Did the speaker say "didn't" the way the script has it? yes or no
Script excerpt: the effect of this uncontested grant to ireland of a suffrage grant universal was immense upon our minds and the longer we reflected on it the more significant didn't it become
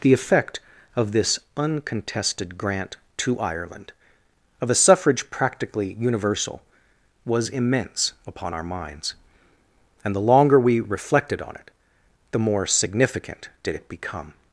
no